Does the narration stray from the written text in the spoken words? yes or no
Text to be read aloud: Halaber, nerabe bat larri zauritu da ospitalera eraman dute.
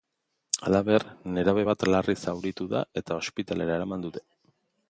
yes